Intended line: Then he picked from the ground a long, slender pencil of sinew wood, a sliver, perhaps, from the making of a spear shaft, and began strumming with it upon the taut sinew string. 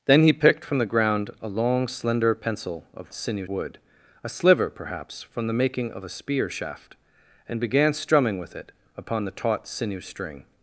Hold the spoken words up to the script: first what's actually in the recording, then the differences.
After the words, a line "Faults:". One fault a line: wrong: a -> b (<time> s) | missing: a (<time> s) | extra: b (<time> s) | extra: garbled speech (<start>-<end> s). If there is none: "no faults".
Then he picked from the ground a long, slender pencil of sinew wood, a sliver, perhaps, from the making of a spear shaft, and began strumming with it upon the taut sinew string.
Faults:
no faults